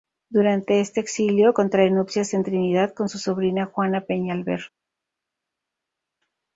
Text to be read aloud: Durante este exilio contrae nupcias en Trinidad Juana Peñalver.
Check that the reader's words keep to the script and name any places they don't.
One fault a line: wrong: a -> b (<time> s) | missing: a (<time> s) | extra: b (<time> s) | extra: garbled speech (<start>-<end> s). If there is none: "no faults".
extra: con su sobrina (2.9 s)